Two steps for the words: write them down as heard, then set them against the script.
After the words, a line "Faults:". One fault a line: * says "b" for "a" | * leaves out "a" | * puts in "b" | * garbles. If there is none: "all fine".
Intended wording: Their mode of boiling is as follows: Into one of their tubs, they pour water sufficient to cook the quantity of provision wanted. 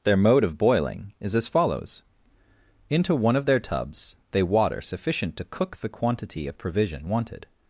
Their mode of boiling is as follows: Into one of their tubs, they water sufficient to cook the quantity of provision wanted.
Faults:
* leaves out "pour"